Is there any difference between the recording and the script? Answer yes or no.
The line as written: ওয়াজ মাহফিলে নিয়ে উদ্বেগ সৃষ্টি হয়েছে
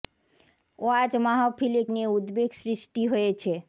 no